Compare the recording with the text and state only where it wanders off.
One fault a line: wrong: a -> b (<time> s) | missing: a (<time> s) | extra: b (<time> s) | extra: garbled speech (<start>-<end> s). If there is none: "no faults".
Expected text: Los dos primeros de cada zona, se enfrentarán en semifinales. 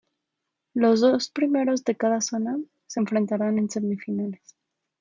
no faults